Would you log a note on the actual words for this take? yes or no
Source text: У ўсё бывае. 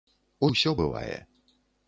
no